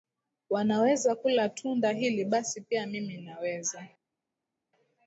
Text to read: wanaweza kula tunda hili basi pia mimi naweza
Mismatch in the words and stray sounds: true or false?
false